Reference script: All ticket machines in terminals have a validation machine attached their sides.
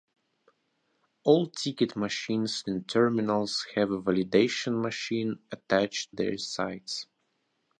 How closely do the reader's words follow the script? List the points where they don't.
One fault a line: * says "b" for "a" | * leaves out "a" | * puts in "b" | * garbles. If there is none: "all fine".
all fine